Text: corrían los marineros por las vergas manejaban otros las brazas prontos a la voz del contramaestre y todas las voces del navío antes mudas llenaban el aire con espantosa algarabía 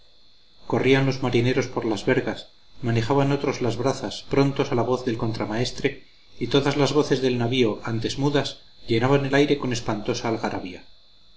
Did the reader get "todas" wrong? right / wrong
right